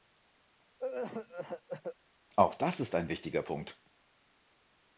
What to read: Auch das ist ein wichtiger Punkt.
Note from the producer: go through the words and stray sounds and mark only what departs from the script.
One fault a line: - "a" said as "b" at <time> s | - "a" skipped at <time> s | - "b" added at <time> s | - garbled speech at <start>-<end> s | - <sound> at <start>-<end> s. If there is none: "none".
- cough at 0.8-2.0 s